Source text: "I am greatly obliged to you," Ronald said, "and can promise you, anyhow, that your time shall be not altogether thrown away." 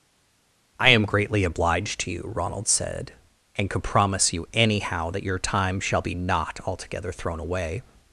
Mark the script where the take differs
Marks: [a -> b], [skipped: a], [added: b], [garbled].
"I am greatly obliged to you," Ronald said, "and [can -> could] promise you, anyhow, that your time shall be not altogether thrown away."